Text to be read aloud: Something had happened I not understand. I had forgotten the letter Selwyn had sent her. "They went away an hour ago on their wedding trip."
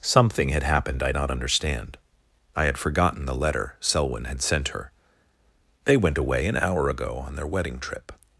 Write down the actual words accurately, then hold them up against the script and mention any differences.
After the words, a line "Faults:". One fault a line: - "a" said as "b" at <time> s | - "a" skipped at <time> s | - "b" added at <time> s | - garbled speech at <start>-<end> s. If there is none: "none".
Something had happened I not understand. I had forgotten the letter Selwyn had sent her. "They went away an hour ago on their wedding trip."
Faults:
none